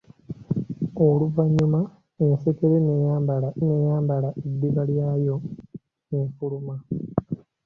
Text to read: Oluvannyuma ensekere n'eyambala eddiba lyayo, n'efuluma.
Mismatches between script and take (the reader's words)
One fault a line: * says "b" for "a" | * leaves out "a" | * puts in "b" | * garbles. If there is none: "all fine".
* puts in "n'eyambala"